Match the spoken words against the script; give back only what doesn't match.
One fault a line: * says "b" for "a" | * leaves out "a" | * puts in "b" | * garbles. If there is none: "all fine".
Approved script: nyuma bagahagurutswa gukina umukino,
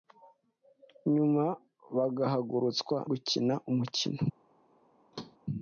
all fine